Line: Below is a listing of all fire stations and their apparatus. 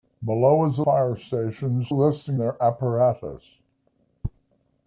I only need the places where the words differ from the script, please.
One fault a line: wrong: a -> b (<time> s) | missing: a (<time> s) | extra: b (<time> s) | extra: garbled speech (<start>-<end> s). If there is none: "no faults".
missing: listing of all (0.8 s)
wrong: and -> listing (1.9 s)